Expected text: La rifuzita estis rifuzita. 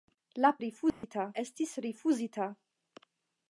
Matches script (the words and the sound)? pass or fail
fail